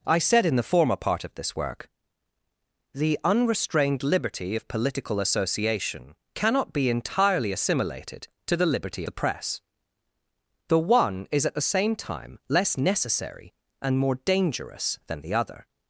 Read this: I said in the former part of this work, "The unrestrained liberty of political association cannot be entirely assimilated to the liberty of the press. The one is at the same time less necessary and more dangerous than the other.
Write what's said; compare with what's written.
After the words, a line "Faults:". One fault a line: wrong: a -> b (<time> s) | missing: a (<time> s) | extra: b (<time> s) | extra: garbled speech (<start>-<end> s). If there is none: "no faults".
I said in the former part of this work, "The unrestrained liberty of political association cannot be entirely assimilated to the liberty the press. The one is at the same time less necessary and more dangerous than the other.
Faults:
missing: of (9.0 s)